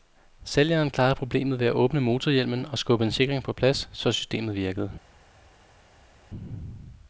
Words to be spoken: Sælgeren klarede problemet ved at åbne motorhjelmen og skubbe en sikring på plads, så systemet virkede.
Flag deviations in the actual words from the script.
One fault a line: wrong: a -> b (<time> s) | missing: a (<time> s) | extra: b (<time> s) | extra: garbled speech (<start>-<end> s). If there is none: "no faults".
no faults